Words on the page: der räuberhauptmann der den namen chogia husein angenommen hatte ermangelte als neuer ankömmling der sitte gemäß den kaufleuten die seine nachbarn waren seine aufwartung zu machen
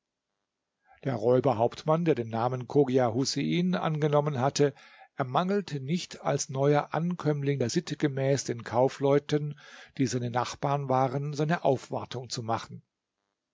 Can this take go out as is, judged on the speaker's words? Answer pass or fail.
fail